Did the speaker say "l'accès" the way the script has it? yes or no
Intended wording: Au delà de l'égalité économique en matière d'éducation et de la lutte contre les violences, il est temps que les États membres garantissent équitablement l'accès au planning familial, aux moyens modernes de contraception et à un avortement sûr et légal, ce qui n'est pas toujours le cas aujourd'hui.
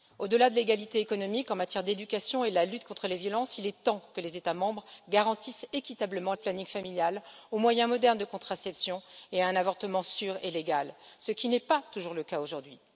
no